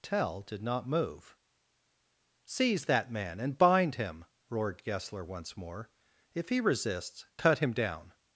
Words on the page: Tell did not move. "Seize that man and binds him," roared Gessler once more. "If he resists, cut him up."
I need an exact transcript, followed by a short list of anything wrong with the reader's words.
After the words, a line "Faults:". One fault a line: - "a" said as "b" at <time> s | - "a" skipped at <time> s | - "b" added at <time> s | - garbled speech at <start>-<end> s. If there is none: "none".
Tell did not move. "Seize that man and bind him," roared Gessler once more. "If he resists, cut him down."
Faults:
- "binds" said as "bind" at 3.5 s
- "up" said as "down" at 7.7 s